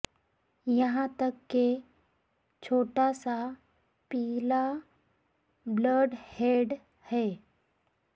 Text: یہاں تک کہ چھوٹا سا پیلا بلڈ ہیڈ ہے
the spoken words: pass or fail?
pass